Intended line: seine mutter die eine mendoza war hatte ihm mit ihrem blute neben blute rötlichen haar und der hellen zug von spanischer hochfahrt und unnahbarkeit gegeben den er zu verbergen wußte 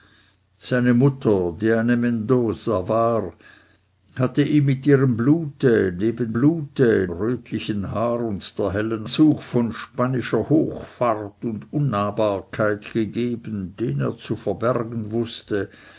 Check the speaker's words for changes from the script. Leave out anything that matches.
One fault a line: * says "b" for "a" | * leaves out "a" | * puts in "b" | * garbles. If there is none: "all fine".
all fine